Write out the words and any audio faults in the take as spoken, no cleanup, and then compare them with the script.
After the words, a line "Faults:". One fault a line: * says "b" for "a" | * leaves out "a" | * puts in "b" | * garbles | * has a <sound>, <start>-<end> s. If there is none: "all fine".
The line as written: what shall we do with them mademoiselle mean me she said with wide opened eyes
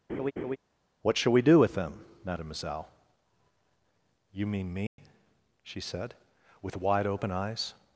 what shall we do with them mademoiselle you mean me she said with wide open eyes
Faults:
* has a laugh, 0.1-0.6 s
* puts in "you"
* has a dropout, 4.9-5.0 s
* says "open" for "opened"